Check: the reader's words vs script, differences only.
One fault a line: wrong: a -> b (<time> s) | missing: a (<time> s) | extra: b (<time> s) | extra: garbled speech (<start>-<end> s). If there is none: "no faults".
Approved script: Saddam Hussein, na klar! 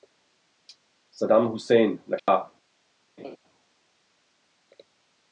no faults